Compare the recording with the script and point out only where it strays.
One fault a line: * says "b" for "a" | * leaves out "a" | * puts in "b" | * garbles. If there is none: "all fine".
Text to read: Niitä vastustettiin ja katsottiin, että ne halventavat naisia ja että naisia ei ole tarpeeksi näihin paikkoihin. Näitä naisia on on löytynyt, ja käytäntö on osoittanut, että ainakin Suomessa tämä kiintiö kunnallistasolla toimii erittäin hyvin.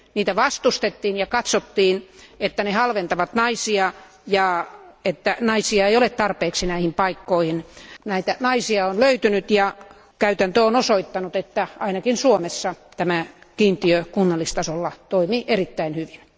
* leaves out "on"